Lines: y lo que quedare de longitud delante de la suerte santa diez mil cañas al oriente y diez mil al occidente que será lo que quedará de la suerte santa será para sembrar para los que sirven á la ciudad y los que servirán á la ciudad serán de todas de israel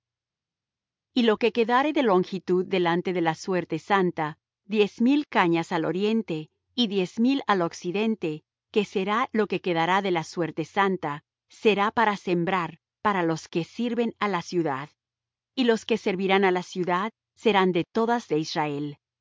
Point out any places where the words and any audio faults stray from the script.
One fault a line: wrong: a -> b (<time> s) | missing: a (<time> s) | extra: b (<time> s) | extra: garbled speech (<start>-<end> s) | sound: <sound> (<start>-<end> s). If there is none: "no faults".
no faults